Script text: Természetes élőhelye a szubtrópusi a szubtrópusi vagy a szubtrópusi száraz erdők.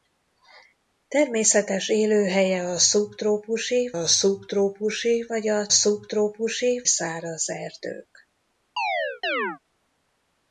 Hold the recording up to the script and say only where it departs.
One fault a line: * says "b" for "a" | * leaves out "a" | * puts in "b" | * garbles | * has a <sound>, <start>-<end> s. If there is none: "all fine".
* has a chirp, 8.8-9.6 s